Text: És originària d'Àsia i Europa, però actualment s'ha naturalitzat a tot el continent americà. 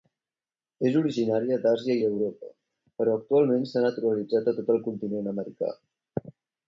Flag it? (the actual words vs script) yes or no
no